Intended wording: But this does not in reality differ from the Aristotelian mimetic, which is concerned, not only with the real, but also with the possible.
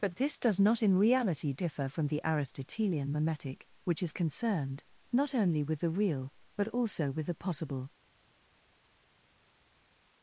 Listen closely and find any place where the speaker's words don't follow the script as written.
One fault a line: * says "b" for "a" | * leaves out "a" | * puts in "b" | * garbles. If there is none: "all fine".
all fine